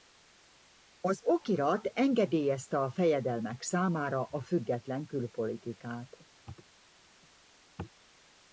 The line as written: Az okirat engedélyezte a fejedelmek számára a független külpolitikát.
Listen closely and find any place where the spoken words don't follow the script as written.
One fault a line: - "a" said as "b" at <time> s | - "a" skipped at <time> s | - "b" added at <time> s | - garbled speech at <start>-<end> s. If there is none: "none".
none